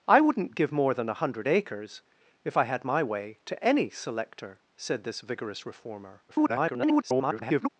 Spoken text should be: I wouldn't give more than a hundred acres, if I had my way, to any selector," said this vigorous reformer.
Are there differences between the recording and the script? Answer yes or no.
yes